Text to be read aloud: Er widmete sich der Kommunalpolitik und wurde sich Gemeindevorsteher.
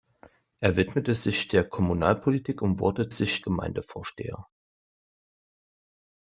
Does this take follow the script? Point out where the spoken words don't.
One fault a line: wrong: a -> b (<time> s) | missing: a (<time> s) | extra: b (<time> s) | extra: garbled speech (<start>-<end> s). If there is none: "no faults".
no faults